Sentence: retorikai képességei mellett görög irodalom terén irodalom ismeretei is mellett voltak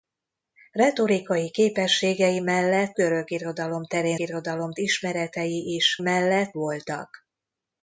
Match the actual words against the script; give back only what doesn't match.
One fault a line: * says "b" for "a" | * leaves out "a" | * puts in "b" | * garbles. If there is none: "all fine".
all fine